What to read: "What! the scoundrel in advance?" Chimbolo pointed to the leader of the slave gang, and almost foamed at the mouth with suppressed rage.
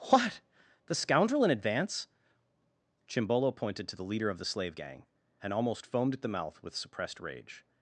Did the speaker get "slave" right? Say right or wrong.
right